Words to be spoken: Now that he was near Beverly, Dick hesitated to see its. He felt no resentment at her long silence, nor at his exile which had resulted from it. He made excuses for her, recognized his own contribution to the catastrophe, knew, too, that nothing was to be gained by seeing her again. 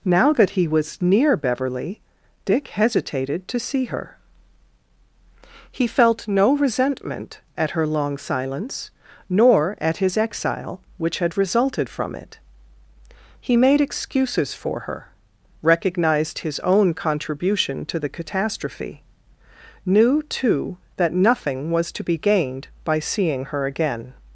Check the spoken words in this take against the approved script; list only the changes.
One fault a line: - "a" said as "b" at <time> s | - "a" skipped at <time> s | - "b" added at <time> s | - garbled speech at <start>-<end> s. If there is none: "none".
- "its" said as "her" at 3.9 s